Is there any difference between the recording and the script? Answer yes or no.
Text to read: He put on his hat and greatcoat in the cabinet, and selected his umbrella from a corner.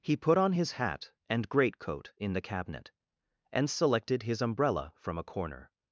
no